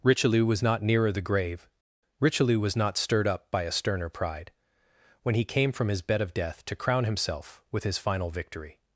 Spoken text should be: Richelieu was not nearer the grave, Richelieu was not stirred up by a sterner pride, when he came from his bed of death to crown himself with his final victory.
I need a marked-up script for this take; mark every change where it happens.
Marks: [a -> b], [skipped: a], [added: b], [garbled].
Richelieu was not nearer the grave, Richelieu was not stirred up by a sterner pride, when he came from his bed of death to crown himself with his final victory.